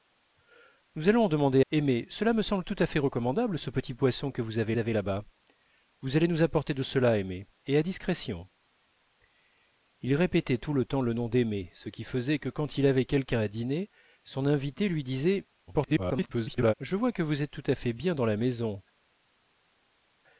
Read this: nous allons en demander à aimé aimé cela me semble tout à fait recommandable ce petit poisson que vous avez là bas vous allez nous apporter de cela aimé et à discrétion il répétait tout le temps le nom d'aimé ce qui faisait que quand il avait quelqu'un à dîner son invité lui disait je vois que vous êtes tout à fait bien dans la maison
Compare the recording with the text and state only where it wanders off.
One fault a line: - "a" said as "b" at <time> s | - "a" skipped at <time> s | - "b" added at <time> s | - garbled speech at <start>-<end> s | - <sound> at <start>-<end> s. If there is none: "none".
- "à" skipped at 1.6 s
- "aimé" skipped at 2.1 s
- "avez" added at 4.8 s
- garbled speech at 15.7-16.7 s